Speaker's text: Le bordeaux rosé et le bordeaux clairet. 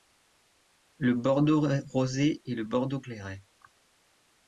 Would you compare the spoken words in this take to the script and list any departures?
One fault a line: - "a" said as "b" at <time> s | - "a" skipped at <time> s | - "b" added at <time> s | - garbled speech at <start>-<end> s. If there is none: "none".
none